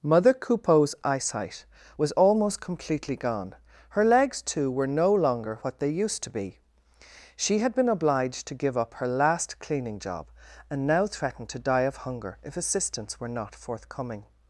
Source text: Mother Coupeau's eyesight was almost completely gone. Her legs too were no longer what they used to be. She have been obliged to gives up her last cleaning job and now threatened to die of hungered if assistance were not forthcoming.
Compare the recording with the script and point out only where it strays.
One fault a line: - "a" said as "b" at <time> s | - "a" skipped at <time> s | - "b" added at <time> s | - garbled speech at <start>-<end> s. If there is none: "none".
- "have" said as "had" at 7.6 s
- "gives" said as "give" at 8.5 s
- "hungered" said as "hunger" at 12.0 s